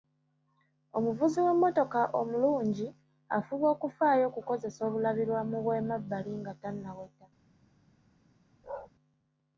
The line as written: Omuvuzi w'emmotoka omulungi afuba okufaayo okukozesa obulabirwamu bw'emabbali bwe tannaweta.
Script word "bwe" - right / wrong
wrong